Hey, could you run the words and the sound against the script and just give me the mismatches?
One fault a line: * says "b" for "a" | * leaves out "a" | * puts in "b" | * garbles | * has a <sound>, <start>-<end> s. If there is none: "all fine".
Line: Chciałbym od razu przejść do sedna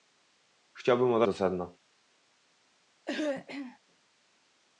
* leaves out "razu przejść"
* has a throat clearing, 3.1-3.8 s